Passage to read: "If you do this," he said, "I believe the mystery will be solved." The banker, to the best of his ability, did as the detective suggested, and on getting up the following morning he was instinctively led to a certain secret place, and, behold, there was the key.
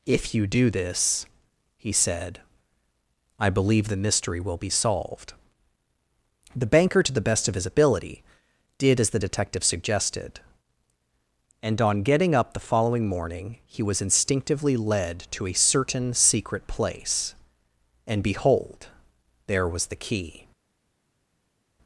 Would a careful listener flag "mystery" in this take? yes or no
no